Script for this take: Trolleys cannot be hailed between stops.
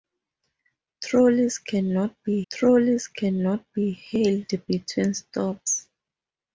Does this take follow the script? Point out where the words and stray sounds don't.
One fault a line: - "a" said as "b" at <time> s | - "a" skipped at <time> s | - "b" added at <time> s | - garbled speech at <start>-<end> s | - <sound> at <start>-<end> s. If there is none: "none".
- "trolleys cannot be" added at 2.5 s